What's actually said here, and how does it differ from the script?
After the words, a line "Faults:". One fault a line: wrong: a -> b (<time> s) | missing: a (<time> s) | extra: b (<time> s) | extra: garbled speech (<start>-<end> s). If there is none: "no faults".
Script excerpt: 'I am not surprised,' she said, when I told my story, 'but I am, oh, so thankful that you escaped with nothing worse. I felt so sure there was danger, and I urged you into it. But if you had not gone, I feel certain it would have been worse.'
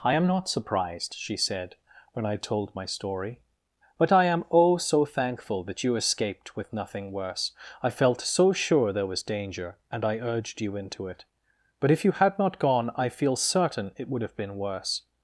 'I am not surprised,' she said, when I told my story, 'but I am, oh, so thankful that you escaped with nothing worse. I felt so sure there was danger, and I urged you into it. But if you had not gone, I feel certain it would have been worse.'
Faults:
no faults